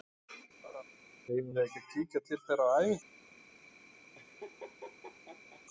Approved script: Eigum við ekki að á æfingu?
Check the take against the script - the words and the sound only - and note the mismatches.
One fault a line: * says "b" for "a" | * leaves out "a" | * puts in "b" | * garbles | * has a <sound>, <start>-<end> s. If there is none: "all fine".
* has a laugh, 0.6-0.8 s
* puts in "kíkja til þeirra"
* has a laugh, 4.1-5.6 s